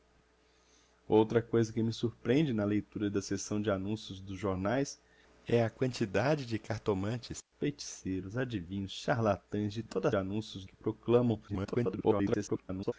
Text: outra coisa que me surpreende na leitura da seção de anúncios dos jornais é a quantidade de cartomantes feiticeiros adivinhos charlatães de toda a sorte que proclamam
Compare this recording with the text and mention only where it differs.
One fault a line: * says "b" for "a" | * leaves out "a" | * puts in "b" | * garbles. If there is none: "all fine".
* says "anúncios" for "sorte"
* garbles